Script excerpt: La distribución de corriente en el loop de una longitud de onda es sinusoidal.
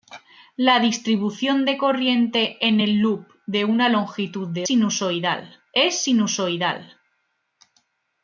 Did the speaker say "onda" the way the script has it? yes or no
no